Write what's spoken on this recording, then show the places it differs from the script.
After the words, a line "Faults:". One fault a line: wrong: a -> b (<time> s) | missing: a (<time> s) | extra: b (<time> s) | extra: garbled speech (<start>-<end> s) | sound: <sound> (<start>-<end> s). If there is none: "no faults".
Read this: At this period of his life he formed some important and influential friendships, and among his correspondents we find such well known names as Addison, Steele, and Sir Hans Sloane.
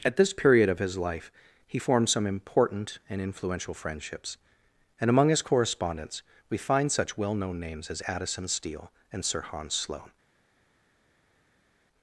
At this period of his life he formed some important and influential friendships, and among his correspondents we find such well known names as Addison, Steele, and Sir Hans Sloane.
Faults:
no faults